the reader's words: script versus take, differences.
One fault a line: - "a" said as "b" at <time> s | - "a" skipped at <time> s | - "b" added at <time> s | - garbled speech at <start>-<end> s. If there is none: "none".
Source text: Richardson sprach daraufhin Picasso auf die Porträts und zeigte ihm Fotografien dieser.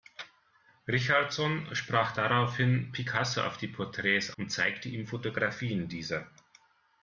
none